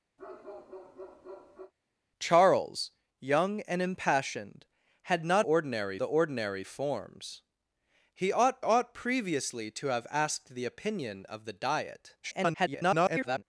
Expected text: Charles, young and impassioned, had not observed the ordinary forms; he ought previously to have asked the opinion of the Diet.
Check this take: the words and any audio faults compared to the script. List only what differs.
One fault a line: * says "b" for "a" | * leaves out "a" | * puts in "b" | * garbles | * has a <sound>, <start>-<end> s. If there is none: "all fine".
* has a bark, 0.2-1.7 s
* says "ordinary" for "observed"
* puts in "ought"
* garbles